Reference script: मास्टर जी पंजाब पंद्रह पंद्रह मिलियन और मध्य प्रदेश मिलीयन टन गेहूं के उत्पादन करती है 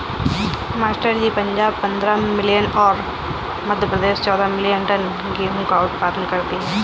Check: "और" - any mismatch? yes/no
no